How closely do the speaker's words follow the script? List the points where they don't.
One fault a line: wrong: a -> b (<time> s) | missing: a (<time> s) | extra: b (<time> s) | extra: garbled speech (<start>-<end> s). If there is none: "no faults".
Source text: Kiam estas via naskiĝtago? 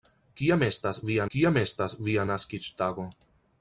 extra: kiam estas via (1.3 s)